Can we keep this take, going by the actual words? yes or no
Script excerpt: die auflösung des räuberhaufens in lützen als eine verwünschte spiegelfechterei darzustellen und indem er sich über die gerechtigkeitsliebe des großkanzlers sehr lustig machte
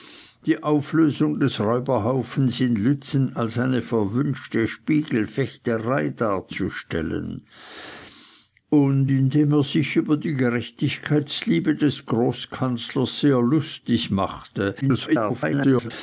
no